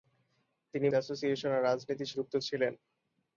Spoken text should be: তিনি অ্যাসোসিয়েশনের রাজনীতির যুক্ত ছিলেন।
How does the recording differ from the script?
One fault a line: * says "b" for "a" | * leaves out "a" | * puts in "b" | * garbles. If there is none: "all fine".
all fine